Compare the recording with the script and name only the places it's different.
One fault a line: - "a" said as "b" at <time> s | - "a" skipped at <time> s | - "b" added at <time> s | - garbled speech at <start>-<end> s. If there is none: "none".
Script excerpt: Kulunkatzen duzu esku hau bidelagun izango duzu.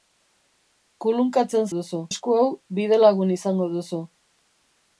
none